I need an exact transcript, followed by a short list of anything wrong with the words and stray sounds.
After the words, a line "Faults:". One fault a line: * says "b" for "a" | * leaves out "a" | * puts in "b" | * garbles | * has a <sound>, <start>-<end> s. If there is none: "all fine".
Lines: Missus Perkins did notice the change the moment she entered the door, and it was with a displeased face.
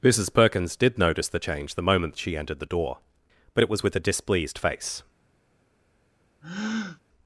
Missus Perkins did notice the change the moment she entered the door, but it was with a displeased face.
Faults:
* says "but" for "and"
* has a breath, 6.4-7.0 s